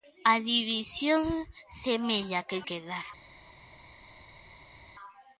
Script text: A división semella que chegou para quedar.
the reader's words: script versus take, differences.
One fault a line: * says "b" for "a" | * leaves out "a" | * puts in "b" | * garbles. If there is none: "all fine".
* leaves out "chegou para"